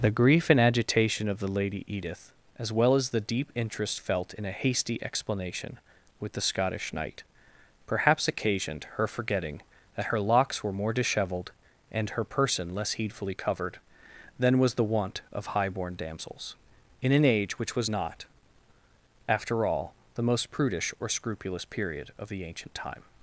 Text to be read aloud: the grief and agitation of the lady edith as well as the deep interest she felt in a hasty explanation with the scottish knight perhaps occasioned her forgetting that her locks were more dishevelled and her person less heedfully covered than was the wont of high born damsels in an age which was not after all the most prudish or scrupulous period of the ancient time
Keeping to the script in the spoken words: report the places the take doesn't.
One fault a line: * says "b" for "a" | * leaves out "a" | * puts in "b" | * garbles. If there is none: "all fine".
* leaves out "she"